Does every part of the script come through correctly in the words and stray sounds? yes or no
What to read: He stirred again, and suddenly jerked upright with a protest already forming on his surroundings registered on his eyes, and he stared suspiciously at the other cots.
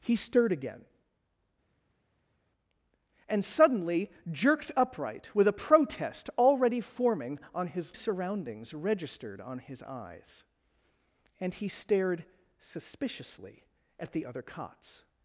yes